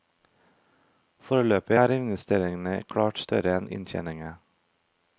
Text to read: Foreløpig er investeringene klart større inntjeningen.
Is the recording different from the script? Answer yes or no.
yes